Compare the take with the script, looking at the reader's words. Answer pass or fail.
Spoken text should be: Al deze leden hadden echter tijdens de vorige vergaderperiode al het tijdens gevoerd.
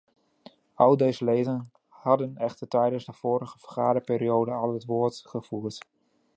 fail